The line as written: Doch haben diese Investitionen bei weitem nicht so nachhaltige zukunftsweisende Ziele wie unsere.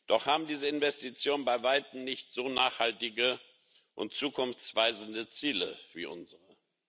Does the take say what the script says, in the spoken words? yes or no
no